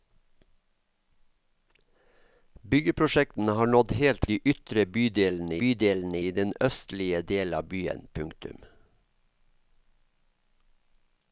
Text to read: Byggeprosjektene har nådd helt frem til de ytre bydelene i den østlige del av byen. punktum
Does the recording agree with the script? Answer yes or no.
no